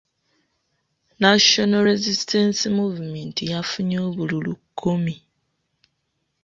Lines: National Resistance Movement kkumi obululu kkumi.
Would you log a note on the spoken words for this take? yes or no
yes